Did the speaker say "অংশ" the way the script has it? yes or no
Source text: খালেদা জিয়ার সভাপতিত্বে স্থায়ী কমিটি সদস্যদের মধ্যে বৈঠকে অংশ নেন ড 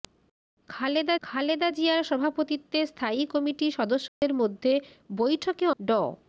no